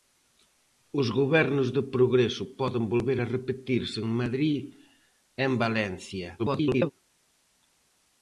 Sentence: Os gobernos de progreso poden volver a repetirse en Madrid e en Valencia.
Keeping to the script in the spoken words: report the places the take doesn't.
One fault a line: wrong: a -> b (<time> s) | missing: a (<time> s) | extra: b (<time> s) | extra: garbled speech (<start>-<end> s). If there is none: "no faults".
extra: garbled speech (6.4-6.9 s)